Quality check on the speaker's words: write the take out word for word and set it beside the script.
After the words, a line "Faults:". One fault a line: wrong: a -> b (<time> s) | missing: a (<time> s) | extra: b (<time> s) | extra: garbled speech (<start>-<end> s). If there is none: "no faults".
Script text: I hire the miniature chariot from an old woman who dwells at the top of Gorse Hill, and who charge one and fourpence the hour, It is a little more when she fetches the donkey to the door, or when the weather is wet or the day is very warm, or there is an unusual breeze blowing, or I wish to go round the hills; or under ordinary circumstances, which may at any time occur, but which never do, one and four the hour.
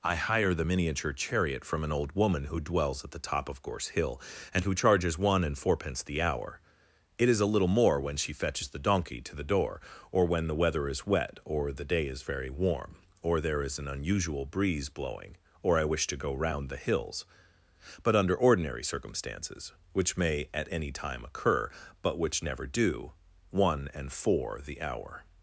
I hire the miniature chariot from an old woman who dwells at the top of Gorse Hill, and who charges one and fourpence the hour, It is a little more when she fetches the donkey to the door, or when the weather is wet or the day is very warm, or there is an unusual breeze blowing, or I wish to go round the hills; but under ordinary circumstances, which may at any time occur, but which never do, one and four the hour.
Faults:
wrong: charge -> charges (4.7 s)
wrong: or -> but (18.0 s)